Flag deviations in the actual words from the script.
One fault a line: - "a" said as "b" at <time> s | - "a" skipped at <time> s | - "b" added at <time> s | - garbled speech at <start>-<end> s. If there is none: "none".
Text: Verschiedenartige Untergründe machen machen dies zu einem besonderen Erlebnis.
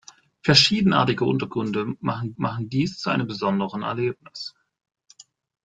none